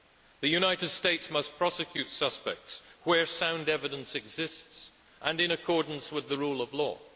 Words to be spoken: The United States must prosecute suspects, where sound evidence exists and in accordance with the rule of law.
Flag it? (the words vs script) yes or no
no